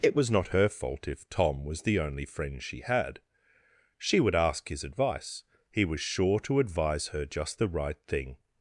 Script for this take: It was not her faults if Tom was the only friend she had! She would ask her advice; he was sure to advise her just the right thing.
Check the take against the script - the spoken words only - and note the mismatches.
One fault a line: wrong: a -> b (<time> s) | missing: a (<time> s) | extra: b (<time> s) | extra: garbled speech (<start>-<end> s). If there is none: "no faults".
wrong: faults -> fault (0.7 s)
wrong: her -> his (4.7 s)